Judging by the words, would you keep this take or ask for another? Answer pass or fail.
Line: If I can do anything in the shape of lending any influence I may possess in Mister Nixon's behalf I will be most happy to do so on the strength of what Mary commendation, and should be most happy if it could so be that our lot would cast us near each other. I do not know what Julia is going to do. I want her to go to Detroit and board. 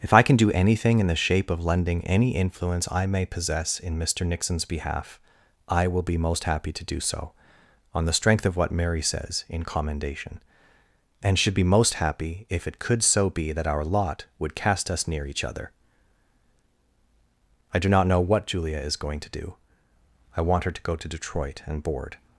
fail